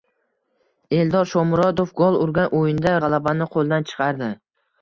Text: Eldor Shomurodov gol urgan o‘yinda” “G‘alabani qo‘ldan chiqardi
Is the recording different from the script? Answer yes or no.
no